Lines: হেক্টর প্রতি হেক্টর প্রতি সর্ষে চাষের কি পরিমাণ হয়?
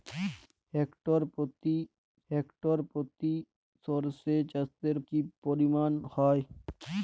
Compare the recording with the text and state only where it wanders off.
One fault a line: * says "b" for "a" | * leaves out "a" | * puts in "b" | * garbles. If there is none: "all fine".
all fine